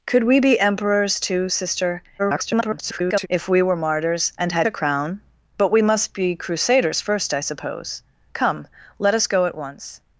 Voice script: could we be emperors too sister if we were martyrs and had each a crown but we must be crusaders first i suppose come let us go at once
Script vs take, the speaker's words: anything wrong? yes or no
yes